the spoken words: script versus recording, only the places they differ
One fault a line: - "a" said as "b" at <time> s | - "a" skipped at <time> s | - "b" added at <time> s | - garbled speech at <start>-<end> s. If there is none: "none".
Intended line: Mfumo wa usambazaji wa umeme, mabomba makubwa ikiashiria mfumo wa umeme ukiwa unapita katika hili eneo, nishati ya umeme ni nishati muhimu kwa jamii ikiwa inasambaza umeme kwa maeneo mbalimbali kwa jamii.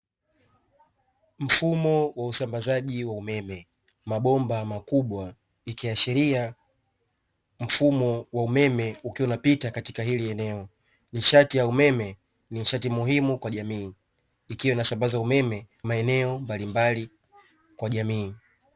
- "kwa" skipped at 15.7 s